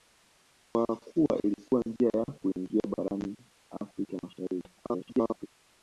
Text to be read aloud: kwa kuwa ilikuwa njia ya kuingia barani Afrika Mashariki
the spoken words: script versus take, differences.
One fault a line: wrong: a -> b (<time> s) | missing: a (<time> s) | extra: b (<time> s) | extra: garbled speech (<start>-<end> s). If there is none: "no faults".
extra: garbled speech (4.8-5.5 s)